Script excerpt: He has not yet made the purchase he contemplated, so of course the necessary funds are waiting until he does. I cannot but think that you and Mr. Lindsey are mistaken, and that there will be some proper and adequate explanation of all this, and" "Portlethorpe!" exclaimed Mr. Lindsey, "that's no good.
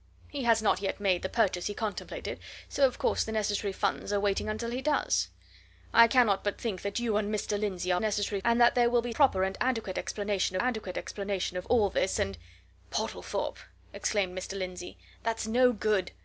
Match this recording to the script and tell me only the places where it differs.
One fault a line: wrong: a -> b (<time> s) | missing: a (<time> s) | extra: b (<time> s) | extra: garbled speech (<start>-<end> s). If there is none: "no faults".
wrong: mistaken -> necessary (8.0 s)
missing: some (9.1 s)
extra: adequate explanation (10.6 s)